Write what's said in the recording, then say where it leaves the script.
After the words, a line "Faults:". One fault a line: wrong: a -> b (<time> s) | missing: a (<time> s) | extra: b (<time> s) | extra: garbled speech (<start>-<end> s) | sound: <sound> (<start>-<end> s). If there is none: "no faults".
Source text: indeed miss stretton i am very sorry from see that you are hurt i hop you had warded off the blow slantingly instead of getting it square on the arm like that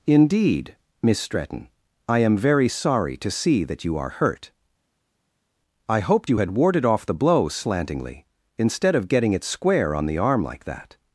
indeed miss stretton i am very sorry to see that you are hurt i hoped you had warded off the blow slantingly instead of getting it square on the arm like that
Faults:
wrong: from -> to (3.2 s)
wrong: hop -> hoped (6.0 s)